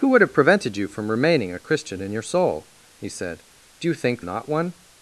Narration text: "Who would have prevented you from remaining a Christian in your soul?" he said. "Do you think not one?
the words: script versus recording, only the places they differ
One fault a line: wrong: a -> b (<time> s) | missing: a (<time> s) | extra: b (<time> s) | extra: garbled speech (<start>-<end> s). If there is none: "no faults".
no faults